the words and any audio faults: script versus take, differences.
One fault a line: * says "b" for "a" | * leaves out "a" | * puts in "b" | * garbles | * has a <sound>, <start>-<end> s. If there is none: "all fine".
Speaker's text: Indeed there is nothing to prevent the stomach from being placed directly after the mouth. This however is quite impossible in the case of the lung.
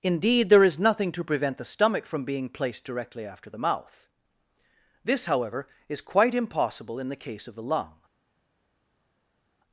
all fine